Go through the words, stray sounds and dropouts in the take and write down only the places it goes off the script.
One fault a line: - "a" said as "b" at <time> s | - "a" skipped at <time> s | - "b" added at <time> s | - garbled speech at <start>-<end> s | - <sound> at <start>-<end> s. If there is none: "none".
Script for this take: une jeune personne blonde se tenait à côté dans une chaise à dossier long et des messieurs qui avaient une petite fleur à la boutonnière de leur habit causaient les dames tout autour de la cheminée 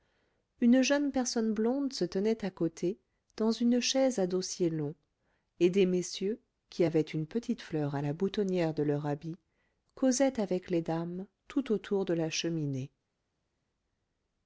- "avec" added at 10.4 s